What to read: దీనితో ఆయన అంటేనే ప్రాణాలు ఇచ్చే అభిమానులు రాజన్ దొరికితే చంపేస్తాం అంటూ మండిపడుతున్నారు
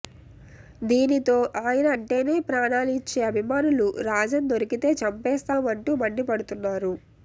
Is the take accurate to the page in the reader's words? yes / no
yes